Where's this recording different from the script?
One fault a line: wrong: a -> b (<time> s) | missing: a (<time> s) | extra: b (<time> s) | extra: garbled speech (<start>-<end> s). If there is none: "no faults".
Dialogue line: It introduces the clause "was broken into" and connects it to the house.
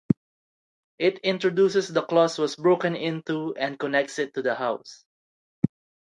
no faults